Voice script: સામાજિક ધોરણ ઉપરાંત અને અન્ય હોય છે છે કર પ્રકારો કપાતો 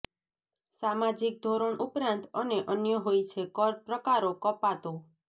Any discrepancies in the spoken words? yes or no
yes